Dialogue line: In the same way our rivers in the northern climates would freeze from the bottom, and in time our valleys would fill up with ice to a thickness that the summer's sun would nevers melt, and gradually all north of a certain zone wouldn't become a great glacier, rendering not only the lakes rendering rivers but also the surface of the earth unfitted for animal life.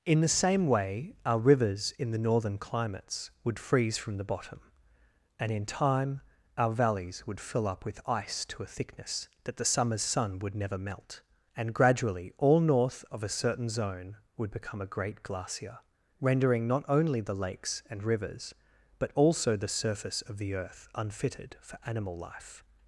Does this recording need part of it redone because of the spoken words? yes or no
yes